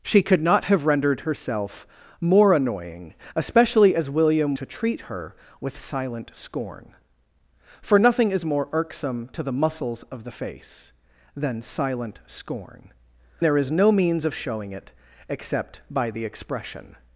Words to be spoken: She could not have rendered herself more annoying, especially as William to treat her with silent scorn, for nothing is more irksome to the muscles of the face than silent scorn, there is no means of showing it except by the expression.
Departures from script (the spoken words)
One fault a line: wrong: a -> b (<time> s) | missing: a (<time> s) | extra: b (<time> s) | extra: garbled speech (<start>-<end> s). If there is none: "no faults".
no faults